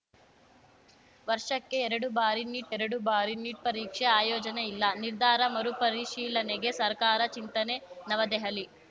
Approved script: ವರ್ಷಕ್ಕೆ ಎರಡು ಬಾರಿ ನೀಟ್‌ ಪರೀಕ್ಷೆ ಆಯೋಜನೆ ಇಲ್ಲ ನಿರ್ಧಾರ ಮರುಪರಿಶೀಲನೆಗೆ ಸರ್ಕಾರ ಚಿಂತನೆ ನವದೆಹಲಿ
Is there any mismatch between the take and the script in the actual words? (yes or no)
yes